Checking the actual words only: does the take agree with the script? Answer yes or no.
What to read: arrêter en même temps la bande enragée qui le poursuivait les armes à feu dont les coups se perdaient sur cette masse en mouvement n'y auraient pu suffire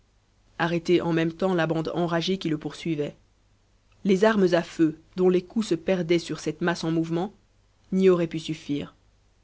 yes